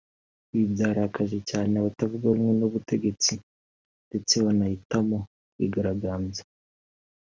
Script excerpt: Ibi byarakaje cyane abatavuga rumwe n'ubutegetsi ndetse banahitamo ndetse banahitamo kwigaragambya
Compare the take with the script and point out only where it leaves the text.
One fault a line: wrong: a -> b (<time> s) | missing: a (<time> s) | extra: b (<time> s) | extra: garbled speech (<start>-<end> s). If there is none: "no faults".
missing: ndetse banahitamo (5.2 s)